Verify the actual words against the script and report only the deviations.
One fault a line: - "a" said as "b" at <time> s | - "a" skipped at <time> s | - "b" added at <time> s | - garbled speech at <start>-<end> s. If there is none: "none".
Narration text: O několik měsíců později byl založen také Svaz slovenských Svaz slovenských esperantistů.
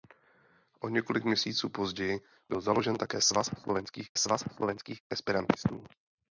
none